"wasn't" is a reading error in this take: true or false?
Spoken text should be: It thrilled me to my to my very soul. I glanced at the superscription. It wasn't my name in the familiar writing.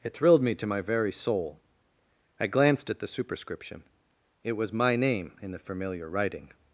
true